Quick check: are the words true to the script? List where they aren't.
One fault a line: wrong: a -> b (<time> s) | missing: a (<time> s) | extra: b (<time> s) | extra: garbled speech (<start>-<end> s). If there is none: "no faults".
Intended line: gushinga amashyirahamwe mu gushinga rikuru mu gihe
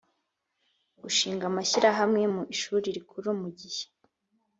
wrong: gushinga -> ishuri (2.5 s)